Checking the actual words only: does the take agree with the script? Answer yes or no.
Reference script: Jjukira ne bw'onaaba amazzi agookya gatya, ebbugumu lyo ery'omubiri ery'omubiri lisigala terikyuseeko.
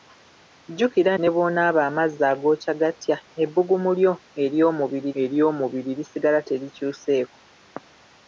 yes